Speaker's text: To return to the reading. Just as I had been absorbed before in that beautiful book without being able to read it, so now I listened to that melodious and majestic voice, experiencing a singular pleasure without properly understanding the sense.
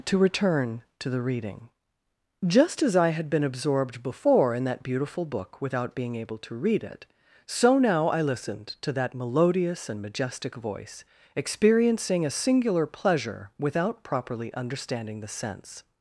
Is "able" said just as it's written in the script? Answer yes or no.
yes